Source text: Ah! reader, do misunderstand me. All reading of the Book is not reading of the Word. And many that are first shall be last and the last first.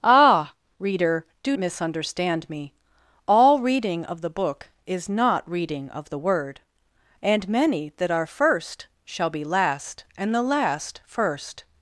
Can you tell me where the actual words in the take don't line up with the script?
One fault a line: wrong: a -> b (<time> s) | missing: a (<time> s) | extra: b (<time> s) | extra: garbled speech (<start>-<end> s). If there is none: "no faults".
no faults